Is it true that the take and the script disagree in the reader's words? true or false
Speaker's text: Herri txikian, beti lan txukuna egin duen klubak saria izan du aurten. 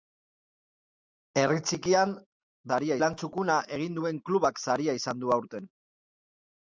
true